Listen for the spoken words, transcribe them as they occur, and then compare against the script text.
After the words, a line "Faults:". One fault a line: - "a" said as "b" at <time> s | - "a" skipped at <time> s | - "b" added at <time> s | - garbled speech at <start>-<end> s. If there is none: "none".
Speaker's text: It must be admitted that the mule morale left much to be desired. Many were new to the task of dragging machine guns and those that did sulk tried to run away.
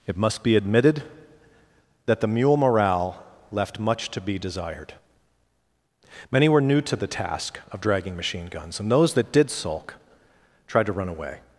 It must be admitted that the mule morale left much to be desired. Many were new to the task of dragging machine guns and those that did sulk tried to run away.
Faults:
none